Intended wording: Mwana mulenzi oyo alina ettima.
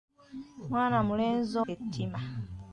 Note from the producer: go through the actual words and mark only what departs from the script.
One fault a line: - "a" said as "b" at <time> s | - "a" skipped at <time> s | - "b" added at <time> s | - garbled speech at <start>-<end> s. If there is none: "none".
- "oyo alina" skipped at 1.5 s